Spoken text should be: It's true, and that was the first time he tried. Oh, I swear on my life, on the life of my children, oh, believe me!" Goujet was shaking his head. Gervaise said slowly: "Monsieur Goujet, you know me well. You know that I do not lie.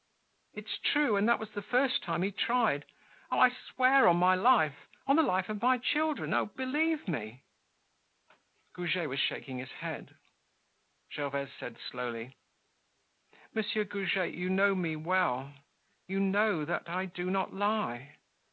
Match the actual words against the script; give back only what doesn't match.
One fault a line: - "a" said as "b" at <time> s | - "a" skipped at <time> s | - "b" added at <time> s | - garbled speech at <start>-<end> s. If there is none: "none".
none